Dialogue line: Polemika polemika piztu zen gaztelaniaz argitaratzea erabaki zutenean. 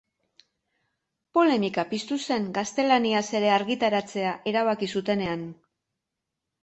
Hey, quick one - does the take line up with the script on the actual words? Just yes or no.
no